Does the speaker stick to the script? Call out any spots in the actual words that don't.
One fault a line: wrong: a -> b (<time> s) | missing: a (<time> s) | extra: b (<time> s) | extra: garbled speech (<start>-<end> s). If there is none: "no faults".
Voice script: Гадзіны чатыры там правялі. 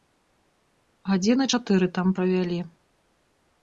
no faults